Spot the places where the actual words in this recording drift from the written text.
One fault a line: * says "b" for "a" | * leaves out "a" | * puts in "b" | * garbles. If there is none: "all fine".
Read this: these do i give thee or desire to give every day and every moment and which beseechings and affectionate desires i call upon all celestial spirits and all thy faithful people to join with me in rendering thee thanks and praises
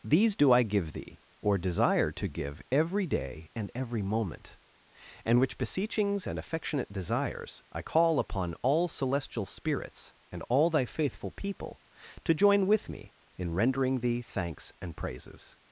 all fine